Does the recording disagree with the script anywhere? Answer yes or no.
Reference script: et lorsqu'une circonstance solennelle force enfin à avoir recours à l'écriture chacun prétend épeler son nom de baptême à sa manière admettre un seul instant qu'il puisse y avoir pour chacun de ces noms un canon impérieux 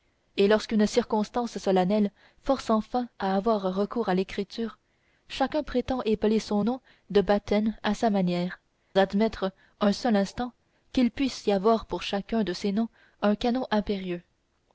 no